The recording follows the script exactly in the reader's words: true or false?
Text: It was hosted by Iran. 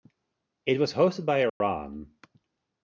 true